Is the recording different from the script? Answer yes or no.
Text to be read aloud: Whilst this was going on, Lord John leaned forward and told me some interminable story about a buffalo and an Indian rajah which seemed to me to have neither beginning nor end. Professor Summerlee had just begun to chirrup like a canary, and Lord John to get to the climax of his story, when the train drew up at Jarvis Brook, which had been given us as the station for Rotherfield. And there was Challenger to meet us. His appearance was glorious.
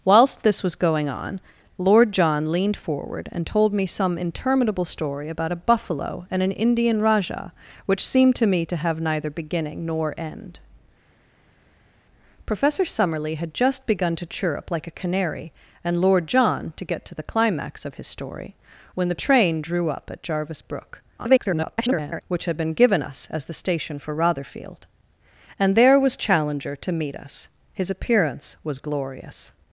yes